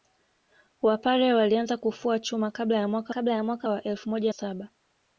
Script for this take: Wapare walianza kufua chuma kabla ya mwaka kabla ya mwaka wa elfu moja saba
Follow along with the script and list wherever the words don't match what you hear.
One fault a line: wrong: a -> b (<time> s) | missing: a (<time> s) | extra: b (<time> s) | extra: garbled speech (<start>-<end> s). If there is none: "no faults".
no faults